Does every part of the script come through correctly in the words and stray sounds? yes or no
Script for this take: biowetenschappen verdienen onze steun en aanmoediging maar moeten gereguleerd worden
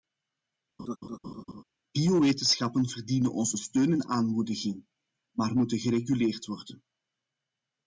no